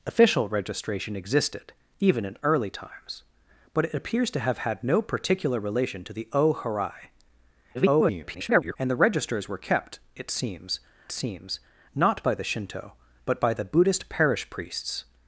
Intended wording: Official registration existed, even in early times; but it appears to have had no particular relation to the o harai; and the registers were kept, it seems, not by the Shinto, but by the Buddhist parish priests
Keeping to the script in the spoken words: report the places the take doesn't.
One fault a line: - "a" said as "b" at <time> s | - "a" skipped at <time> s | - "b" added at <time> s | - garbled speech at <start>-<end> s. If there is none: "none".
- garbled speech at 7.7-8.8 s
- "seems" added at 11.1 s